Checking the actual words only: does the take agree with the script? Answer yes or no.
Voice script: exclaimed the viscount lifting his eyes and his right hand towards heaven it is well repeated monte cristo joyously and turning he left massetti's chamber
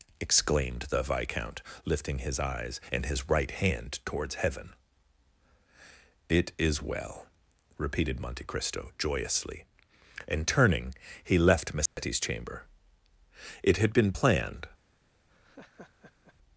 no